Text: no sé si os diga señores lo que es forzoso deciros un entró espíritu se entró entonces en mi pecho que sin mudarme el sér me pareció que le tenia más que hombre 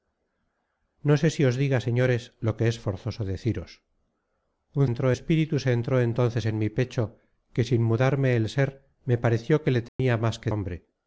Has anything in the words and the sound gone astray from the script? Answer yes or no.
yes